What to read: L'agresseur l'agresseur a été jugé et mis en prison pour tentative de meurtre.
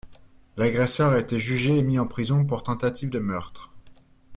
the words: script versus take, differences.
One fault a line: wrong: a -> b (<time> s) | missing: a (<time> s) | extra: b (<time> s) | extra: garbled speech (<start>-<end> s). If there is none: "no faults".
missing: l'agresseur (1.1 s)